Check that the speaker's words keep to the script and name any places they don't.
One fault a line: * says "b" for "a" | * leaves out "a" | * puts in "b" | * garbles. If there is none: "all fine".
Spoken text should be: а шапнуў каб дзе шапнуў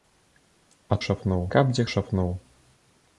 all fine